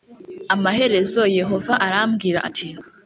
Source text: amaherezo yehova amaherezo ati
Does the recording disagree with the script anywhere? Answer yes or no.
yes